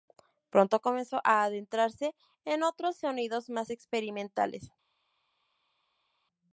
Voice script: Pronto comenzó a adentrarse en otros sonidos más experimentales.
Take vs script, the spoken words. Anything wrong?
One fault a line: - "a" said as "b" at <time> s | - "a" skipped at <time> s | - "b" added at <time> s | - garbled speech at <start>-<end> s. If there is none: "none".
none